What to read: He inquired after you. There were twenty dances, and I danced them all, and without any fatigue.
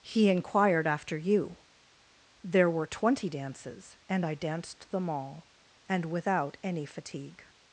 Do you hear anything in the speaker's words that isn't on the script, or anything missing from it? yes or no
no